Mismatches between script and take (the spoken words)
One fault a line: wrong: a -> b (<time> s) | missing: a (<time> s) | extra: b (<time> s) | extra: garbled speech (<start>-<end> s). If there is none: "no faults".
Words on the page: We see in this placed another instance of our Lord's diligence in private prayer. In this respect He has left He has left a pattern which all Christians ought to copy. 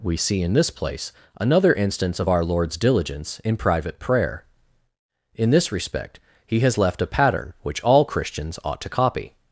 wrong: placed -> place (0.7 s)
missing: He has left (7.0 s)